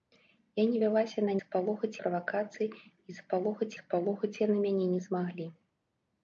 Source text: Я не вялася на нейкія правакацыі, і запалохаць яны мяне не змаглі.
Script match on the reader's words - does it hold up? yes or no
no